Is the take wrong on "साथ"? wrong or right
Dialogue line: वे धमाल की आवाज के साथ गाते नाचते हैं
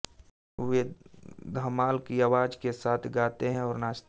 right